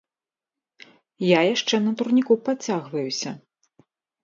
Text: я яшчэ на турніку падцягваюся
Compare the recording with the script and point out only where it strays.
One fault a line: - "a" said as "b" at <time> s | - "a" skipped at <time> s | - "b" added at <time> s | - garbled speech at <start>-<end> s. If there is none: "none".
none